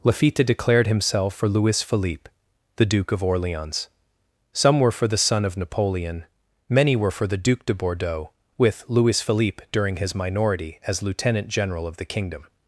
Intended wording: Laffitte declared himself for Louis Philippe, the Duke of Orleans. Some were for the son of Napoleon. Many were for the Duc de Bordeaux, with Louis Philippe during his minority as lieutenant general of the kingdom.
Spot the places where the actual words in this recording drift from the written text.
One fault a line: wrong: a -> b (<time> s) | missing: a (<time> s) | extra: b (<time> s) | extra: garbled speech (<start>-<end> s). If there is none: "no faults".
no faults